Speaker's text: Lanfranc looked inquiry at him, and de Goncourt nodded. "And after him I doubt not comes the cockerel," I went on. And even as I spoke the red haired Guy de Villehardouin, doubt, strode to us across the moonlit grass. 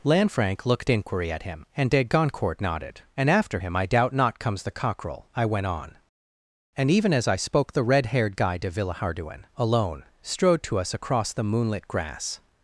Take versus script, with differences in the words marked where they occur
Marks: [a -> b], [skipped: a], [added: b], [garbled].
Lanfranc looked inquiry at him, and de Goncourt nodded. "And after him I doubt not comes the cockerel," I went on. And even as I spoke the red haired Guy de Villehardouin, [doubt, -> alone] strode to us across the moonlit grass.